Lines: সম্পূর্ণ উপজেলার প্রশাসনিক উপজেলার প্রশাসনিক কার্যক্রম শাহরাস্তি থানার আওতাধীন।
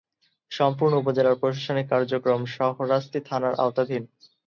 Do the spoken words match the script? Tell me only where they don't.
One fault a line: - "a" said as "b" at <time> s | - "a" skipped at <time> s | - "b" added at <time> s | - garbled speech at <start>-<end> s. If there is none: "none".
- "উপজেলার প্রশাসনিক" skipped at 1.9 s